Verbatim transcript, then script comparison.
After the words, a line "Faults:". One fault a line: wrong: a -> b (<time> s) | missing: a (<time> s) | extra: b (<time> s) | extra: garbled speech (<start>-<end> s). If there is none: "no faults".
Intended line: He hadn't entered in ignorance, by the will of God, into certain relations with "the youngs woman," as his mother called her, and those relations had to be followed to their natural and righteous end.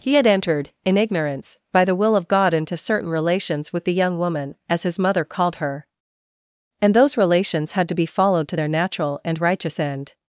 He had entered in ignorance, by the will of God, into certain relations with "the young woman," as his mother called her, and those relations had to be followed to their natural and righteous end.
Faults:
wrong: hadn't -> had (0.1 s)
wrong: youngs -> young (3.9 s)